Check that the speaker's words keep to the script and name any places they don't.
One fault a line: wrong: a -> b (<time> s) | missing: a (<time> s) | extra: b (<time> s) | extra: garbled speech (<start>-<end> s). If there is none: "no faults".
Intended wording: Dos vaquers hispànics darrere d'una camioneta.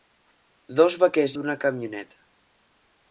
missing: hispànics darrere (1.4 s)